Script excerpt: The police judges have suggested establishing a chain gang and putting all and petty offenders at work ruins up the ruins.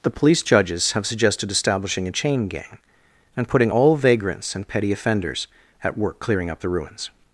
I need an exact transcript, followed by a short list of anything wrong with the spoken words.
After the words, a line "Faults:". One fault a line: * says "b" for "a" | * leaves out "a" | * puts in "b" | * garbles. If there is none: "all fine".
The police judges have suggested establishing a chain gang and putting all vagrants and petty offenders at work clearing up the ruins.
Faults:
* puts in "vagrants"
* says "clearing" for "ruins"